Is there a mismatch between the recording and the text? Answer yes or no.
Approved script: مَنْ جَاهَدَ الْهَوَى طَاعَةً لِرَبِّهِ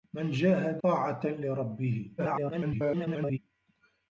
yes